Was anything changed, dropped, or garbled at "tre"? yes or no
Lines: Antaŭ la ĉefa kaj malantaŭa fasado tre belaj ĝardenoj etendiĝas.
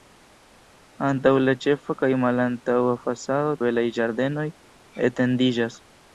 yes